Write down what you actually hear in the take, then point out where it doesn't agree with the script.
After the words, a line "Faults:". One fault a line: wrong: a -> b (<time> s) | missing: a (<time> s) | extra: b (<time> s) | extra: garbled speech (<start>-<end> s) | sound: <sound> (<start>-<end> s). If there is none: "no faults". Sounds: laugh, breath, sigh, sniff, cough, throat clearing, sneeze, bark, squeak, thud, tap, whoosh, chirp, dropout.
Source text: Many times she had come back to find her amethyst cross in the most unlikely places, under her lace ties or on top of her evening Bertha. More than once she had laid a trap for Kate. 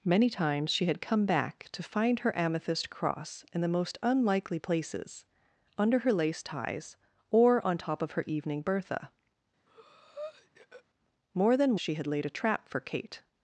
Many times she had come back to find her amethyst cross in the most unlikely places, under her lace ties or on top of her evening Bertha. More than she had laid a trap for Kate.
Faults:
sound: breath (9.7-10.8 s)
missing: once (11.8 s)